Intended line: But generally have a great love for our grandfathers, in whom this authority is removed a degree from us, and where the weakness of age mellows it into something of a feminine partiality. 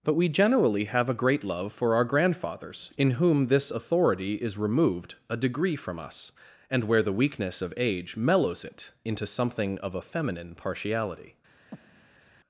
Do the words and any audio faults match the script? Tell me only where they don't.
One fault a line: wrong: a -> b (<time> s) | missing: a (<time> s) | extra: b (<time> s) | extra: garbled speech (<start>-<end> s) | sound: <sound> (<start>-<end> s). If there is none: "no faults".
extra: we (0.1 s)
sound: breath (11.7-12.2 s)